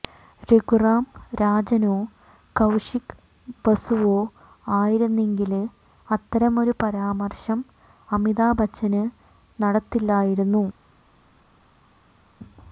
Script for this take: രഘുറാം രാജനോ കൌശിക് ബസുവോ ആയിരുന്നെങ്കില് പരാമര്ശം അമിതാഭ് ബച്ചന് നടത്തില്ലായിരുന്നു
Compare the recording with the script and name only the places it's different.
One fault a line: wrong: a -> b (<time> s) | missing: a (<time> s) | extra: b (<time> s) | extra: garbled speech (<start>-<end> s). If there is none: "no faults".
extra: അത്തരമൊരു (6.1 s)